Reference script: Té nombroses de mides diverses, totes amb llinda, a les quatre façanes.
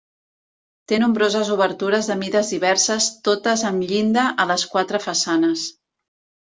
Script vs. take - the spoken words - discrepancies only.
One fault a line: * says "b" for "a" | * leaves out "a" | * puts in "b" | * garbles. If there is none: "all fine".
* puts in "obertures"